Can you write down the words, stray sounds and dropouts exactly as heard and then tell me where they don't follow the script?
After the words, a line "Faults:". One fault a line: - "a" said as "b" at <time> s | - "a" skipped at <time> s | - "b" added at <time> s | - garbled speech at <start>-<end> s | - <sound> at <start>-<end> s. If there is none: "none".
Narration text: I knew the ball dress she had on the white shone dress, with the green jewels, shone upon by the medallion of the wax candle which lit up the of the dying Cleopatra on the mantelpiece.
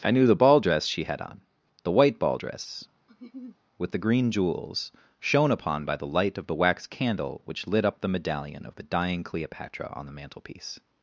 I knew the ball dress she had on the white ball dress, with the green jewels, shone upon by the light of the wax candle which lit up the medallion of the dying Cleopatra on the mantelpiece.
Faults:
- "shone" said as "ball" at 2.2 s
- laugh at 3.1-3.6 s
- "medallion" said as "light" at 6.1 s
- "medallion" added at 8.1 s